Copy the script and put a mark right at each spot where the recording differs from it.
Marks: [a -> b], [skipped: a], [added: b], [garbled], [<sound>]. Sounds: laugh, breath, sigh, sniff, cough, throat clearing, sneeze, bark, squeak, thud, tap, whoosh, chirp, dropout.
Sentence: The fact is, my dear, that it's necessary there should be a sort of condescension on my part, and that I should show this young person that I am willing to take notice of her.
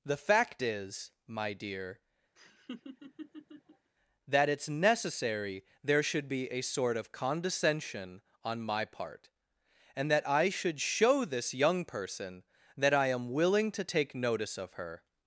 The fact is, my dear, [laugh] that it's necessary there should be a sort of condescension on my part, and that I should show this young person that I am willing to take notice of her.